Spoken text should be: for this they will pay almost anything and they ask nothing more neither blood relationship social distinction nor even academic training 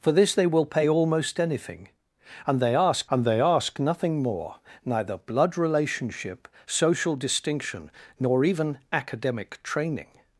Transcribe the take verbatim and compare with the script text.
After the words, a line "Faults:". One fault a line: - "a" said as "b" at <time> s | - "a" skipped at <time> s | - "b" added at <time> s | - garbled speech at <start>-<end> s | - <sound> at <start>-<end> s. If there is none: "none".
for this they will pay almost anything and they ask and they ask nothing more neither blood relationship social distinction nor even academic training
Faults:
- "and they ask" added at 3.1 s